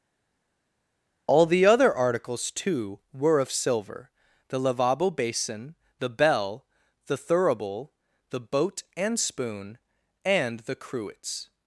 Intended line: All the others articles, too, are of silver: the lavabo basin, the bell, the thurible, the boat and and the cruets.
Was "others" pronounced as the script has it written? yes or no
no